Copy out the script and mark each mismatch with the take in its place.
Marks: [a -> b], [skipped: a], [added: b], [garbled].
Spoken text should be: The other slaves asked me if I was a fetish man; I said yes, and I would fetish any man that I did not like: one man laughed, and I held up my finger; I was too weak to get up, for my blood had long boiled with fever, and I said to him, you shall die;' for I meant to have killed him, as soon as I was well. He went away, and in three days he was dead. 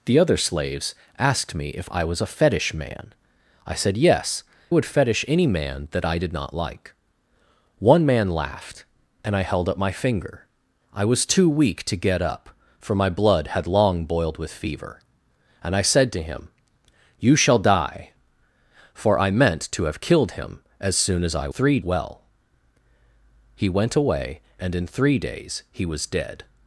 The other slaves asked me if I was a fetish man; I said yes, [skipped: and I] would fetish any man that I did not like: one man laughed, and I held up my finger; I was too weak to get up, for my blood had long boiled with fever, and I said to him, you shall die;' for I meant to have killed him, as soon as I [was -> three] well. He went away, and in three days he was dead.